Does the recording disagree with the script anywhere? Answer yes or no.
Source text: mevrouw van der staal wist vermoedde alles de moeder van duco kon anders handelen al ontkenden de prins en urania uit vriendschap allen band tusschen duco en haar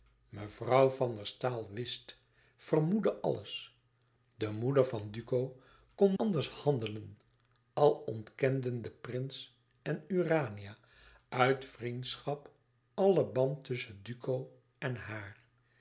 no